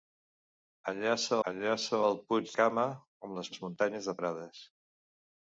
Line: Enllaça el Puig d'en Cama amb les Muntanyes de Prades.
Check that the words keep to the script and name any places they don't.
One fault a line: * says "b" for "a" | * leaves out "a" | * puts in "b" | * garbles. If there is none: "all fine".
* puts in "enllaça"
* leaves out "d'en"
* puts in "les"